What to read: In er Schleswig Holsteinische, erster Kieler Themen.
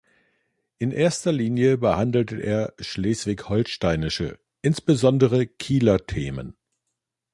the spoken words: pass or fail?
fail